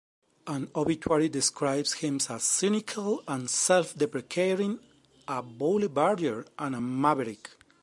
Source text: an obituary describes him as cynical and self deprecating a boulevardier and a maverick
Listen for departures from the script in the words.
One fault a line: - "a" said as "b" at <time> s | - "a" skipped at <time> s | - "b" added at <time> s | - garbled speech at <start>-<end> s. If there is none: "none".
none